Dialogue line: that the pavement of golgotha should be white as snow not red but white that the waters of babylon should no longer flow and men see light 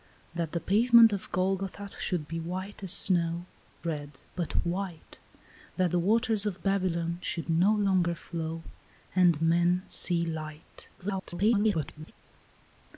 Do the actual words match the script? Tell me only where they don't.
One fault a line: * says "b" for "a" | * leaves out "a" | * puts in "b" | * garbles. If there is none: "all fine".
* leaves out "not"
* garbles